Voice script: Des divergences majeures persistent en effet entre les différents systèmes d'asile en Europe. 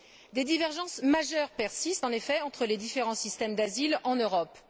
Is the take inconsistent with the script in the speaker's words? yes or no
no